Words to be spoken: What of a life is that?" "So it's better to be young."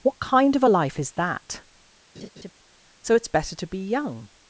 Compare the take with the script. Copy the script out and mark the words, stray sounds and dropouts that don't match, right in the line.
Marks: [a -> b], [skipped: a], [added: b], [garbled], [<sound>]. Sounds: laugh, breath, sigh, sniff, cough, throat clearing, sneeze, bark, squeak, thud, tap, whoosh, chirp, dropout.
What [added: kind] of a life is that?" [laugh] "So it's better to be young."